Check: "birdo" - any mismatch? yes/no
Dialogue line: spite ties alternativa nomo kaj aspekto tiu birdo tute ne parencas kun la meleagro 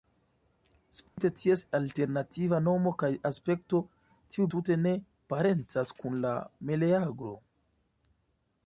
yes